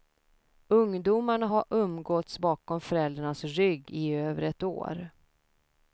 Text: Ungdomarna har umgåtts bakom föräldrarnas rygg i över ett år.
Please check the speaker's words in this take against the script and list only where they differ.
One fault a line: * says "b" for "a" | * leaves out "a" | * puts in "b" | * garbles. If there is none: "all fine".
all fine